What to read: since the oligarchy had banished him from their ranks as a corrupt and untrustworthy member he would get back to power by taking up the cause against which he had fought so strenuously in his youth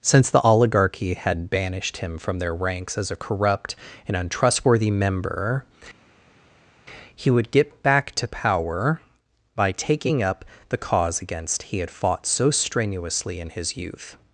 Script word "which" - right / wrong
wrong